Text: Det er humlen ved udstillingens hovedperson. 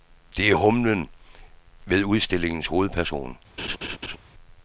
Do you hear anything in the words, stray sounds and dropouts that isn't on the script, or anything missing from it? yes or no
yes